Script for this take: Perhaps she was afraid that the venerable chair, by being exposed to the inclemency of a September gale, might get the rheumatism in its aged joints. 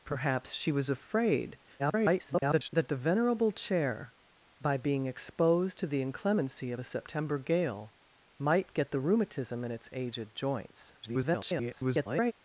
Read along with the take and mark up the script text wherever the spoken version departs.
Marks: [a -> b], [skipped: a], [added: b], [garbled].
Perhaps she was afraid [garbled] that the venerable chair, by being exposed to the inclemency of a September gale, might get the rheumatism in its aged joints. [garbled]